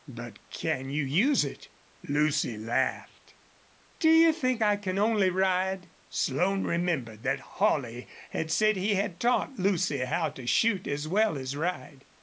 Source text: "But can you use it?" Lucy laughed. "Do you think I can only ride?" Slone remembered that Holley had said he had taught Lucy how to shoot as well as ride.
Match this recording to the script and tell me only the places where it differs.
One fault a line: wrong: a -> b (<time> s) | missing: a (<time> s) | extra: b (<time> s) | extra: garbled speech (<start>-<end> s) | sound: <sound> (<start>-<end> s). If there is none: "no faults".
no faults